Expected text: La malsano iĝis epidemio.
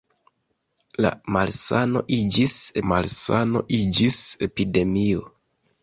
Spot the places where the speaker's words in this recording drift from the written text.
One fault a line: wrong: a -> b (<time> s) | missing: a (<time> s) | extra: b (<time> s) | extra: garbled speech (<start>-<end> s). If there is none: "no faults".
extra: malsano iĝis (2.9 s)